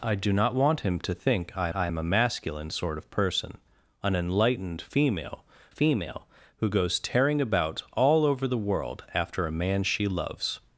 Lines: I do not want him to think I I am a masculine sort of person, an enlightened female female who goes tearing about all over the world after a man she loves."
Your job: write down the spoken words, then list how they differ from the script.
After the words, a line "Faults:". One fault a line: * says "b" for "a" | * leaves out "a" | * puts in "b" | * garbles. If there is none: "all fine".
I do not want him to think I I am a masculine sort of person, an enlightened female female who goes tearing about all over the world after a man she loves."
Faults:
all fine